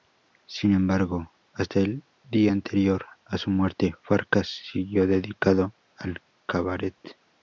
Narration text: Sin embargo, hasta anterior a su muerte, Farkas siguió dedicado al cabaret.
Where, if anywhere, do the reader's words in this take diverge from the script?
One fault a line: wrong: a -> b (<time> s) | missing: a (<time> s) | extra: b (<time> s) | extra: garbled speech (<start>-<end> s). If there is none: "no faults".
extra: el día (1.8 s)